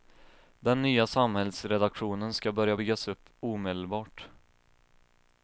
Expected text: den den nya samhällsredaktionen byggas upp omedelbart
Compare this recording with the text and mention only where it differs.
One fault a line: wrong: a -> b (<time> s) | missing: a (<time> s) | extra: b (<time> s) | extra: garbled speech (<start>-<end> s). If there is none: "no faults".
missing: den (0.8 s)
extra: ska börja (2.3 s)